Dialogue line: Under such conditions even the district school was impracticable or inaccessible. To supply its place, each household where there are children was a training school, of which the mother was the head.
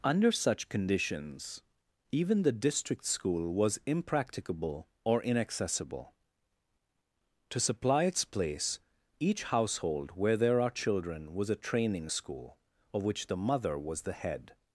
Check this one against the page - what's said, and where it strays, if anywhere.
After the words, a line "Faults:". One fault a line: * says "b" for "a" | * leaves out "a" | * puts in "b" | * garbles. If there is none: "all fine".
Under such conditions even the district school was impracticable or inaccessible. To supply its place, each household where there are children was a training school, of which the mother was the head.
Faults:
all fine